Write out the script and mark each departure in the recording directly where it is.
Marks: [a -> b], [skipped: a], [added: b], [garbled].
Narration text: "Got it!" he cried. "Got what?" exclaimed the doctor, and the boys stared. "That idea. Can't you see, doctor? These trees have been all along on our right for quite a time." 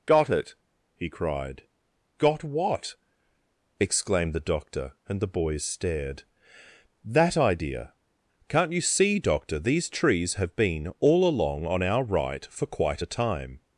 "Got it!" he cried. "Got what?" exclaimed the doctor, and the boys stared. "That idea. Can't you see, doctor? These trees have been all along on our right for quite a time."